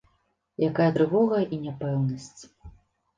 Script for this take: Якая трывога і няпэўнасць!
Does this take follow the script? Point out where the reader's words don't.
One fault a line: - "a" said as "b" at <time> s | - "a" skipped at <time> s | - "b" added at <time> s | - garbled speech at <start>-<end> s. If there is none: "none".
none